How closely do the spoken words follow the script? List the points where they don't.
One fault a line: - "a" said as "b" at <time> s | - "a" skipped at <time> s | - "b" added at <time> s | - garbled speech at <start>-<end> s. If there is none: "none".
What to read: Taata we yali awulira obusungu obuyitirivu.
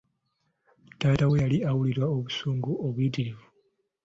none